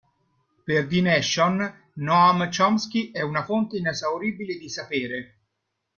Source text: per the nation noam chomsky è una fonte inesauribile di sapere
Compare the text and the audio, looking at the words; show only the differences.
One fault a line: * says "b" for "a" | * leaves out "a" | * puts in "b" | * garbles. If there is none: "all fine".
all fine